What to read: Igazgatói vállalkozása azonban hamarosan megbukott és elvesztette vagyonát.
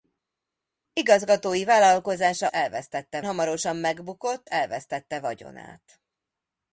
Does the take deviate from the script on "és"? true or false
true